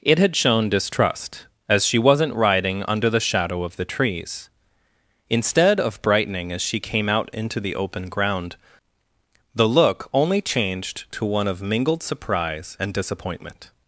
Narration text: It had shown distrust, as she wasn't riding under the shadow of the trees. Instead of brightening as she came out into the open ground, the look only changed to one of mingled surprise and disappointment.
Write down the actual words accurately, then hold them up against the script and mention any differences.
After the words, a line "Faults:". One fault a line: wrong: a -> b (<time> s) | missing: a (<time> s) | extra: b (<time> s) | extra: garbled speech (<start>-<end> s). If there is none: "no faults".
It had shown distrust, as she wasn't riding under the shadow of the trees. Instead of brightening as she came out into the open ground, the look only changed to one of mingled surprise and disappointment.
Faults:
no faults